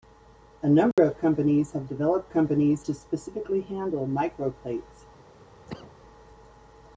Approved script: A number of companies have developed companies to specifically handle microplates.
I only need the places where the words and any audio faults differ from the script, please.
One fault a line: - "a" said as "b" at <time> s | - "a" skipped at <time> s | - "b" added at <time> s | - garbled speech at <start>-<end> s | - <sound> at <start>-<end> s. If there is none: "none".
- dropout at 0.9-1.0 s
- cough at 5.7-6.0 s